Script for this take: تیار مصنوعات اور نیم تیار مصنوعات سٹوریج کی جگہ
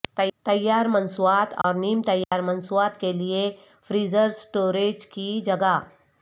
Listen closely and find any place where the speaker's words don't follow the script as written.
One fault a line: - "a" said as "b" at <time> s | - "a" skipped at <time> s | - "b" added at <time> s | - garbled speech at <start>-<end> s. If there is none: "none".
- "کے لئے فریزر" added at 3.0 s